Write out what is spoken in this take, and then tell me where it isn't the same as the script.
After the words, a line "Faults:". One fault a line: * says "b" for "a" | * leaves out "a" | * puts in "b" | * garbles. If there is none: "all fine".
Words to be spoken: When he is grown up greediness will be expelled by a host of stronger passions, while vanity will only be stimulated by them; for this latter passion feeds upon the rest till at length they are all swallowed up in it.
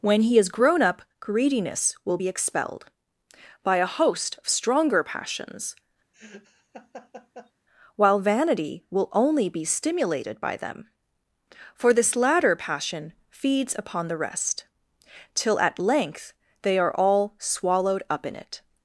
When he is grown up greediness will be expelled by a host of stronger passions, while vanity will only be stimulated by them; for this latter passion feeds upon the rest till at length they are all swallowed up in it.
Faults:
all fine